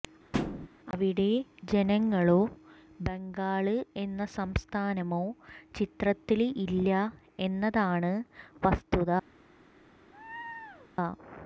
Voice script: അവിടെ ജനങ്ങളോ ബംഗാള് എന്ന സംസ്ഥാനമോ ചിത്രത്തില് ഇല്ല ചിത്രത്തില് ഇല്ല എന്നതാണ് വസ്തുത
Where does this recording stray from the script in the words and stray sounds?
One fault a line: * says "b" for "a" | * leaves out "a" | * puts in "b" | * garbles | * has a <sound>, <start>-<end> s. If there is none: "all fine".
* has a thud, 0.3-0.7 s
* leaves out "ചിത്രത്തില് ഇല്ല"
* has a laugh, 10.1-10.9 s